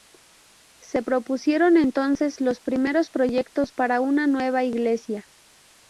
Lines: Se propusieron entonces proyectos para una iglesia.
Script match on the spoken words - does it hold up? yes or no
no